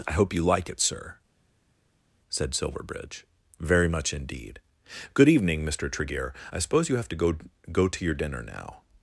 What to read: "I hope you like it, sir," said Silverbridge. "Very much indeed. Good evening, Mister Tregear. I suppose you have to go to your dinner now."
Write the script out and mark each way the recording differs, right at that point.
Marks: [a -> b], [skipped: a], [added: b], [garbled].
"I hope you like it, sir," said Silverbridge. "Very much indeed. Good evening, Mister Tregear. I suppose you have to go [added: go] to your dinner now."